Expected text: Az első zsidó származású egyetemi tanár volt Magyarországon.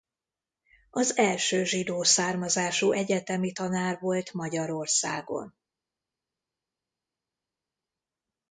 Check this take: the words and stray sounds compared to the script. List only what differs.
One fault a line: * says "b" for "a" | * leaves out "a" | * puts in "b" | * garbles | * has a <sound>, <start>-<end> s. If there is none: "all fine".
all fine